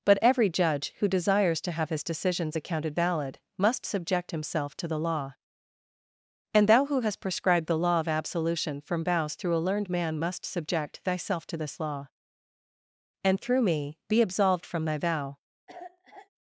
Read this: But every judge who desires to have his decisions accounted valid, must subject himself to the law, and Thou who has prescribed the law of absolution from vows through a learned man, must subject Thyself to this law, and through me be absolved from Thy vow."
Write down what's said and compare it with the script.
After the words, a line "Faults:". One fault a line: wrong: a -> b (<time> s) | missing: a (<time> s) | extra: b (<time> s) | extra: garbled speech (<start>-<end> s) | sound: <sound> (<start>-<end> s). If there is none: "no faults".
But every judge who desires to have his decisions accounted valid, must subject himself to the law, and Thou who hast prescribed the law of absolution from vows through a learned man, must subject Thyself to this law, and through me be absolved from Thy vow."
Faults:
wrong: has -> hast (7.0 s)
sound: cough (15.7-16.3 s)